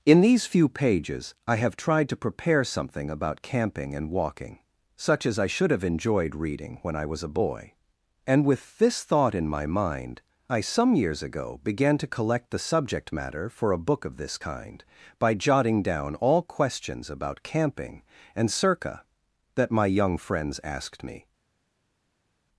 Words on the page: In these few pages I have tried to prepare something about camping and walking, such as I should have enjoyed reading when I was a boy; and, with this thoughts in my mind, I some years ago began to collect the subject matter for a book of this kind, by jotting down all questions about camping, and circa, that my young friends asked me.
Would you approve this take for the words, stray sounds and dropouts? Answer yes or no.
no